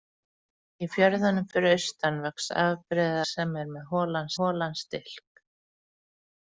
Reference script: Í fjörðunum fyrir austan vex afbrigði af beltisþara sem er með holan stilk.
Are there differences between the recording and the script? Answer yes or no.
yes